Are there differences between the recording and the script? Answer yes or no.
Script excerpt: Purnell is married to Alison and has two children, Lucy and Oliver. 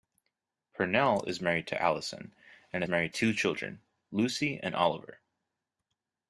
yes